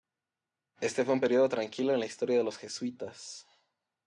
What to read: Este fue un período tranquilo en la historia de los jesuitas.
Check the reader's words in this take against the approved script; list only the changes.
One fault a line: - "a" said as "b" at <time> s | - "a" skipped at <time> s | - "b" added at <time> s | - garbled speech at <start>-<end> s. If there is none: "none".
none